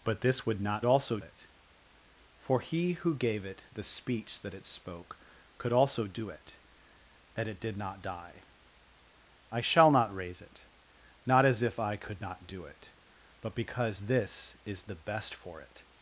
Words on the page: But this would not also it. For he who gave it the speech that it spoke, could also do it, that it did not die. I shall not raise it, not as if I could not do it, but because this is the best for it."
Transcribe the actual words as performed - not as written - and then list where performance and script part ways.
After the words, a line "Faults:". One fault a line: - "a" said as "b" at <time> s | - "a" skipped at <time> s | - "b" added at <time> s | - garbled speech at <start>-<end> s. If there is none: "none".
But this would not also it. For he who gave it the speech that it spoke, could also do it, that it did not die. I shall not raise it, not as if I could not do it, but because this is the best for it."
Faults:
none